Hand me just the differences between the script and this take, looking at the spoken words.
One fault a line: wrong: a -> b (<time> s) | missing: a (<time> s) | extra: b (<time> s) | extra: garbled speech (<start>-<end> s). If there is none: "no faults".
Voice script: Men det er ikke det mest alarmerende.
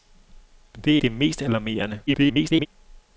missing: ikke (1.0 s)
extra: garbled speech (2.1-2.7 s)